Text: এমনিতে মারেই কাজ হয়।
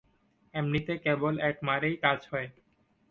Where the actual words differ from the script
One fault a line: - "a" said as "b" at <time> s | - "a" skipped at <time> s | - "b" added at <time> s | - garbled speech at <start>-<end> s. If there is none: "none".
- "কেবল এক" added at 1.0 s